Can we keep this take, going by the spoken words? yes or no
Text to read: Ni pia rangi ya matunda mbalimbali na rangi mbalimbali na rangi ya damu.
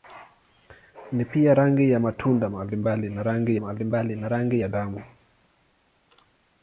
yes